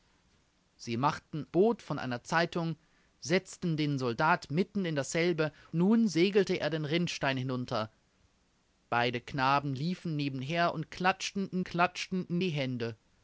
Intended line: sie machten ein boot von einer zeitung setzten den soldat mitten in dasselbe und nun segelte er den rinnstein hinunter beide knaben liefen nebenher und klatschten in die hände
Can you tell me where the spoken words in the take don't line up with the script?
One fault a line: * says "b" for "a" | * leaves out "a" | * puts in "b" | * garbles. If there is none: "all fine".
* leaves out "ein"
* leaves out "und"
* puts in "klatschten in"